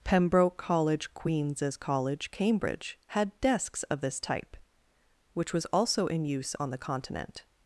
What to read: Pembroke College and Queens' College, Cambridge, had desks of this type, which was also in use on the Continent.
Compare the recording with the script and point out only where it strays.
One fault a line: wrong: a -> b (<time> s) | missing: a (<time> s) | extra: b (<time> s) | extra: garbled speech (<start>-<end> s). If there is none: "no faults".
missing: and (1.1 s)